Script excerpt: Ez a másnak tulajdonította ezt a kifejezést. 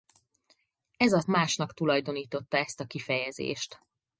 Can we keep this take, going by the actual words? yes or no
yes